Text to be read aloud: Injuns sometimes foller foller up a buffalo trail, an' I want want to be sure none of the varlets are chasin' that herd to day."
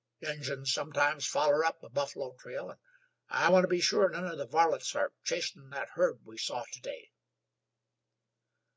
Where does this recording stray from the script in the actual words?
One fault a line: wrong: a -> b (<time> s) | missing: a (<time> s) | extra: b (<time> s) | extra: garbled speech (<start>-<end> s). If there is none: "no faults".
missing: foller (1.6 s)
missing: want (3.6 s)
extra: we saw (6.3 s)